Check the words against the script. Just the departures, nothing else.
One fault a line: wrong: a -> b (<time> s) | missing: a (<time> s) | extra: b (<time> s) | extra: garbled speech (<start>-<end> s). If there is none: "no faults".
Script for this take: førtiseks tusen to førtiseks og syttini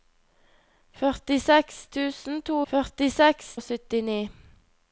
no faults